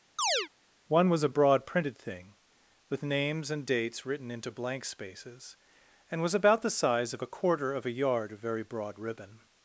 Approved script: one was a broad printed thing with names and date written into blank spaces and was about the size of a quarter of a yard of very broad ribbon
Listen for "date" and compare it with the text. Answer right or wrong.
wrong